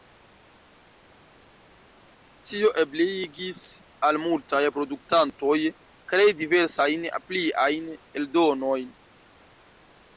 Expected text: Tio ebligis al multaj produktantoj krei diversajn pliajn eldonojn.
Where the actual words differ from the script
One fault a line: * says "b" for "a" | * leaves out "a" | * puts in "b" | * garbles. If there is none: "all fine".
all fine